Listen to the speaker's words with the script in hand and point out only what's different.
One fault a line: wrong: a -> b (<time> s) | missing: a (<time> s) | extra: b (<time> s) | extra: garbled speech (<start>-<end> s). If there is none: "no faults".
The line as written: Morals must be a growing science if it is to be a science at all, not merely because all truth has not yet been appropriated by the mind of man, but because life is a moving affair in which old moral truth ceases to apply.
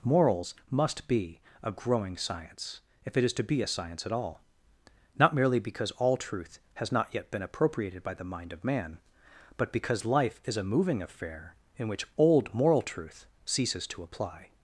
no faults